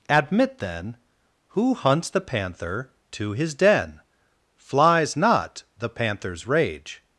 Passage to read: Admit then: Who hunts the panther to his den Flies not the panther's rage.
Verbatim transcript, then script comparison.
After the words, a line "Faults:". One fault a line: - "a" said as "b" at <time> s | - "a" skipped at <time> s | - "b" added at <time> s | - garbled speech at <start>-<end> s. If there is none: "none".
Admit then: Who hunts the panther to his den Flies not the panther's rage.
Faults:
none